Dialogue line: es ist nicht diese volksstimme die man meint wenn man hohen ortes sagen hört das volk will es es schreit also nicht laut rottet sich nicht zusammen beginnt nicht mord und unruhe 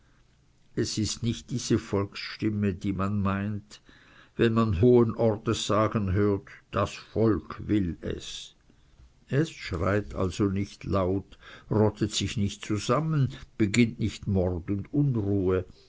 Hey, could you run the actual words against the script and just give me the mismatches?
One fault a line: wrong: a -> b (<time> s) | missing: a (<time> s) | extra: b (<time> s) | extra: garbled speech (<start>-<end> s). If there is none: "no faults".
no faults